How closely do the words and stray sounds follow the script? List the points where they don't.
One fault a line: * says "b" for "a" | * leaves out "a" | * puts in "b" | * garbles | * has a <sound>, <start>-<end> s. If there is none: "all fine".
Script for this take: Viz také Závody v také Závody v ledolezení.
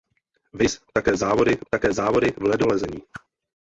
* has a whoosh, 3.1-3.2 s